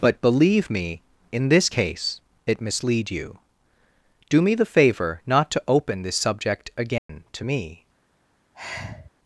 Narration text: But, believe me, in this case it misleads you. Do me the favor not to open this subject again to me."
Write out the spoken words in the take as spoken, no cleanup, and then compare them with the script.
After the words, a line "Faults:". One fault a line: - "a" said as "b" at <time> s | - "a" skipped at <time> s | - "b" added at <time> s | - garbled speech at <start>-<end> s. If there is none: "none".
But, believe me, in this case it mislead you. Do me the favor not to open this subject again to me."
Faults:
- "misleads" said as "mislead" at 2.6 s